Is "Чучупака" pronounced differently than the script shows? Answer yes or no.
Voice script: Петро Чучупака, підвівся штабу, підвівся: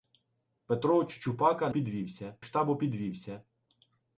no